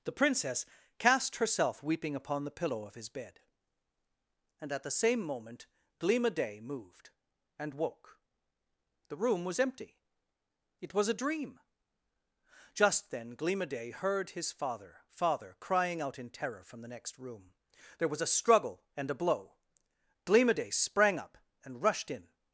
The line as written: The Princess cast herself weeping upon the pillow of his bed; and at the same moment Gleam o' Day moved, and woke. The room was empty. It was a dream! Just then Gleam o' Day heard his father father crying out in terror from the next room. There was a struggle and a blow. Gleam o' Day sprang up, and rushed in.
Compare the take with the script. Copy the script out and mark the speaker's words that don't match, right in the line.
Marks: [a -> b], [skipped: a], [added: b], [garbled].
The Princess cast herself weeping upon the pillow of his bed; and at the same moment Gleam o' Day moved, and woke. The room was empty. It was a dream! Just then Gleam o' Day heard his father father crying out in terror from the next room. There was a struggle and a blow. Gleam o' Day sprang up, and rushed in.